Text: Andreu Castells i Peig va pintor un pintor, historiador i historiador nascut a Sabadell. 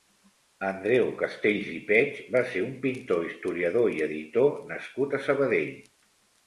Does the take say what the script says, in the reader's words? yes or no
no